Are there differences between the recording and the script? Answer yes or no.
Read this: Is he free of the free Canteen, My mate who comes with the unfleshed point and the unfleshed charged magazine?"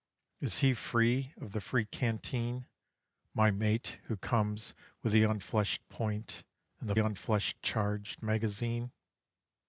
no